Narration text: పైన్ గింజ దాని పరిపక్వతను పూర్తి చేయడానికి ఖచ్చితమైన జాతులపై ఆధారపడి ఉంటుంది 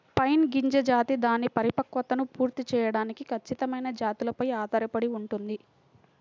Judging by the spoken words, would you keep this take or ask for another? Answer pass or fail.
fail